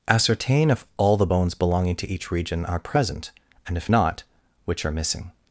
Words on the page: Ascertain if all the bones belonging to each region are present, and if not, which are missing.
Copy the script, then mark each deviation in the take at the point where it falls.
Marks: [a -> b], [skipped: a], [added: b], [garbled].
Ascertain if all the bones belonging to each region are present, and if not, which are missing.